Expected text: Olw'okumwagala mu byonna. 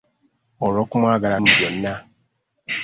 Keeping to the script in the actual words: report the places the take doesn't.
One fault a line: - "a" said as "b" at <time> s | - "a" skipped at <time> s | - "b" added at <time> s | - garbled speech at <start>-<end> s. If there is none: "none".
none